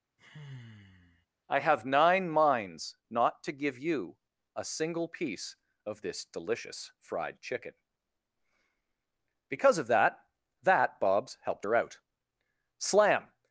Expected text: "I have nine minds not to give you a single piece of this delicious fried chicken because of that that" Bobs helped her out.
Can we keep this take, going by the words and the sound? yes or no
no